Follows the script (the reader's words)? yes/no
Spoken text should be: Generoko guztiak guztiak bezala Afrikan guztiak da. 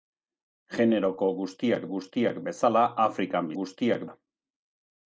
yes